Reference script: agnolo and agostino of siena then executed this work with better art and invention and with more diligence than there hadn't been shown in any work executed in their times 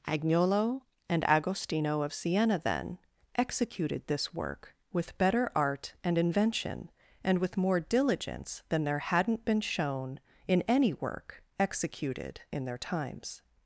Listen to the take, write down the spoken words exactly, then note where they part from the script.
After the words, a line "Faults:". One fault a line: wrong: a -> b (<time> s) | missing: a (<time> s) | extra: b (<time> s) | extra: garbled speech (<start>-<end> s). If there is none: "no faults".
agnolo and agostino of siena then executed this work with better art and invention and with more diligence than there hadn't been shown in any work executed in their times
Faults:
no faults